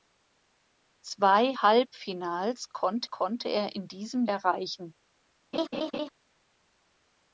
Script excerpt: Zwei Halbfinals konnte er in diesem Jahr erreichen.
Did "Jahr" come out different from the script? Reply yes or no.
yes